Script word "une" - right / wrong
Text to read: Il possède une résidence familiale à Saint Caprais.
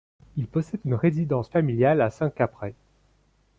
right